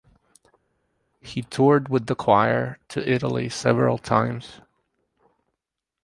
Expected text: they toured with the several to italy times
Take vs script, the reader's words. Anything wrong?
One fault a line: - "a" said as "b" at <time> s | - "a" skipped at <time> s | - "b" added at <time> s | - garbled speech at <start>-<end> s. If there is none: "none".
- "they" said as "he" at 1.2 s
- "several" said as "choir" at 2.1 s
- "several" added at 3.5 s